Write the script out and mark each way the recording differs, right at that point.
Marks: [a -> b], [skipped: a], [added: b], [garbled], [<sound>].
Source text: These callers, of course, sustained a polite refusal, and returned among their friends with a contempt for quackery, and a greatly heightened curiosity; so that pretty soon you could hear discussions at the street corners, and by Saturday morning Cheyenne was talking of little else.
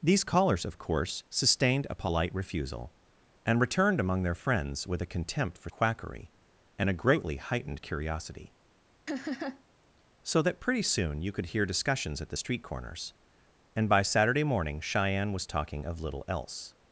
These callers, of course, sustained a polite refusal, and returned among their friends with a contempt for quackery, and a greatly heightened curiosity; [laugh] so that pretty soon you could hear discussions at the street corners, and by Saturday morning Cheyenne was talking of little else.